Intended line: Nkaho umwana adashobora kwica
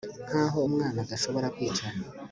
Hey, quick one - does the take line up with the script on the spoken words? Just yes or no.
yes